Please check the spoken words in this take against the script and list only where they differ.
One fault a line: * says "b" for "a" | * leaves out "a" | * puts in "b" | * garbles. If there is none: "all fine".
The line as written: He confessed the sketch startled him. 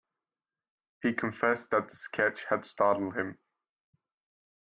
* puts in "that"
* puts in "had"